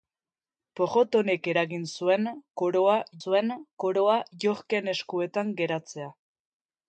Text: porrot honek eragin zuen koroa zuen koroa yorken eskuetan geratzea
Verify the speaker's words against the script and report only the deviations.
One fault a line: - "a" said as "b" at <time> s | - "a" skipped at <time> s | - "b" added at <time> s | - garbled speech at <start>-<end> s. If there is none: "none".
none